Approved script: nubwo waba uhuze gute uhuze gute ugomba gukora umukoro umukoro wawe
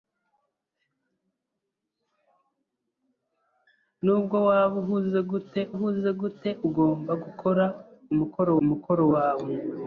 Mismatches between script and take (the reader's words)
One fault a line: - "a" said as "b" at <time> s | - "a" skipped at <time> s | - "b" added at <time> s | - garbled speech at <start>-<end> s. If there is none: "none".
none